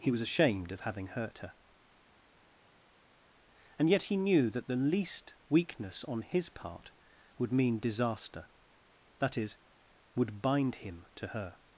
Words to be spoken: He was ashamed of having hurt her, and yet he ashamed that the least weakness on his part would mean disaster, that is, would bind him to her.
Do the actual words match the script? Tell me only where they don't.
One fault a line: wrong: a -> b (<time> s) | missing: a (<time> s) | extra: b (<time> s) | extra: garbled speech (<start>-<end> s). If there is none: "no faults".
wrong: ashamed -> knew (4.1 s)